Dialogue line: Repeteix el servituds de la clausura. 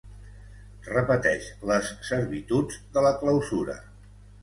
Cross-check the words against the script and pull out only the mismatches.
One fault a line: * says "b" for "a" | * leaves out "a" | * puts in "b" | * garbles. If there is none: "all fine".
* says "les" for "el"